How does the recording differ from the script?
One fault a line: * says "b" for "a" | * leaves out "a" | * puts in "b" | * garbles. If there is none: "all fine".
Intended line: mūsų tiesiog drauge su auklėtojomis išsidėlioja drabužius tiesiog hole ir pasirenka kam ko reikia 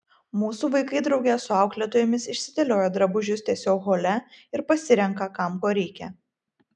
* says "vaikai" for "tiesiog"